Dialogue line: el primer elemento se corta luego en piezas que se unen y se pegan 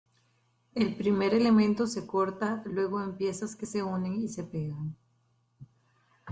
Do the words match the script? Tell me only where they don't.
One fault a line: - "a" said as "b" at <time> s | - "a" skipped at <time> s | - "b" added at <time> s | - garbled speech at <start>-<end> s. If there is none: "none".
none